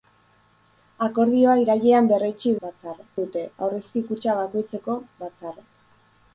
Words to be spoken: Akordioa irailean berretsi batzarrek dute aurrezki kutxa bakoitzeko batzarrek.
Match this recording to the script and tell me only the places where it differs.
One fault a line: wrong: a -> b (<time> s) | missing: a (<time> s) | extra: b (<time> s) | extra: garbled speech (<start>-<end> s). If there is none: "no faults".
no faults